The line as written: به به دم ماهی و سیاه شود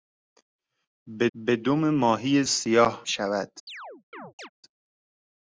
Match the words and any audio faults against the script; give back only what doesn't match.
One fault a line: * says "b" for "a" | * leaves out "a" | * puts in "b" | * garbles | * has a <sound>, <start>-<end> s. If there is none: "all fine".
* has a chirp, 3.7-4.5 s